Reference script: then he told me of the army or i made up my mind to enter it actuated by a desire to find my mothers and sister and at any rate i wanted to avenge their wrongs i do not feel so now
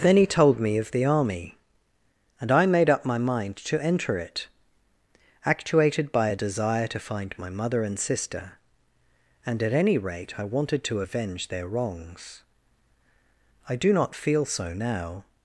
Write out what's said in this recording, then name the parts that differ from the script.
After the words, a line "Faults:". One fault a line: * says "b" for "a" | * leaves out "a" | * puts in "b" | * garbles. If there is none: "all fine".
then he told me of the army and i made up my mind to enter it actuated by a desire to find my mother and sister and at any rate i wanted to avenge their wrongs i do not feel so now
Faults:
* says "and" for "or"
* says "mother" for "mothers"